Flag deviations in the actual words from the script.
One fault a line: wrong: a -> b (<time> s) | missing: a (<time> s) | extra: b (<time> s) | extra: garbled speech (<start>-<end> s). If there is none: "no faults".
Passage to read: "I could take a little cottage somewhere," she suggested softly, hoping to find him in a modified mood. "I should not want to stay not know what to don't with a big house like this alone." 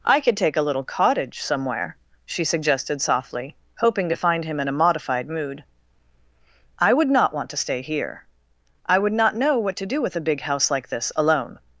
wrong: should -> would (6.9 s)
extra: here I would (7.8 s)
wrong: don't -> do (9.8 s)